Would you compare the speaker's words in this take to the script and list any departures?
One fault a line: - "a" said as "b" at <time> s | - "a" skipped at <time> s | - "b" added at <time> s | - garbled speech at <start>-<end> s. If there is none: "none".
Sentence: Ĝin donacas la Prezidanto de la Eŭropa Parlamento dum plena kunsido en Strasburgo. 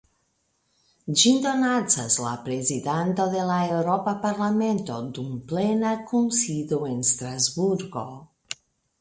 none